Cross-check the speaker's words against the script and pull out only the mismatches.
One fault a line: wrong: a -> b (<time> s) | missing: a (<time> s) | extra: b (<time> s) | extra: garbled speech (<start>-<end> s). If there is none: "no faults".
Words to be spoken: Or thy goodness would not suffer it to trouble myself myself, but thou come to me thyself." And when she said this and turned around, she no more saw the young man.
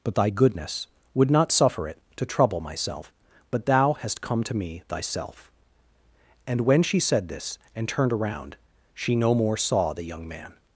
wrong: Or -> But (0.0 s)
missing: myself (3.1 s)
extra: hast (3.9 s)